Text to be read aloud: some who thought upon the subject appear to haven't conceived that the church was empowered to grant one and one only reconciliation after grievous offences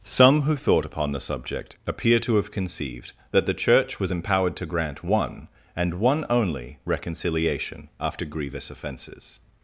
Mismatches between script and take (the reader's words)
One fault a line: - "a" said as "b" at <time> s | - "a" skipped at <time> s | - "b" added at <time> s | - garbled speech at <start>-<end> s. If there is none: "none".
- "haven't" said as "have" at 2.4 s